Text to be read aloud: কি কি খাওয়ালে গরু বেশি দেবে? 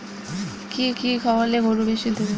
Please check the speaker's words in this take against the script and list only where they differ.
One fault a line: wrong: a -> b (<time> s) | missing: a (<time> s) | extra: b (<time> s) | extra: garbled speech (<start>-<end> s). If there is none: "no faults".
no faults